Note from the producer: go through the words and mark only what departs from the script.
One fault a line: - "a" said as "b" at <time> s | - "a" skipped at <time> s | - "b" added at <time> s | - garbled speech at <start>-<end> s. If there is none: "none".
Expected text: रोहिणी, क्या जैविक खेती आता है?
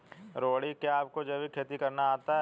- "आपको" added at 1.0 s
- "करना" added at 1.7 s